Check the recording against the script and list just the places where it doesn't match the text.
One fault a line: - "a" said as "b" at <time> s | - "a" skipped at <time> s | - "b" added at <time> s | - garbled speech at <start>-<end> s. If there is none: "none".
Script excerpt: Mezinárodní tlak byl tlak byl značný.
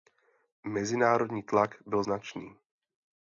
- "tlak byl" skipped at 2.0 s